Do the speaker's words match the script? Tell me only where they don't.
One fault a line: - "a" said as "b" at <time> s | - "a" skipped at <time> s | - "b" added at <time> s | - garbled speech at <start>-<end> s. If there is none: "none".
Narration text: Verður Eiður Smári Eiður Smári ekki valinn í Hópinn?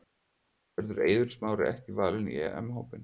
- "Eiður Smári" skipped at 1.7 s
- "EM" added at 2.5 s